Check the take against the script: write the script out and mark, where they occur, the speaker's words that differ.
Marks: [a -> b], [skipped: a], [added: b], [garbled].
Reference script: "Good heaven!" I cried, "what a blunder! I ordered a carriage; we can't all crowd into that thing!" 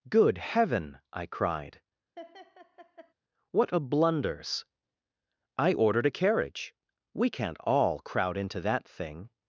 "Good heaven!" I cried, "what a [blunder! -> blunders] I ordered a carriage; we can't all crowd into that thing!"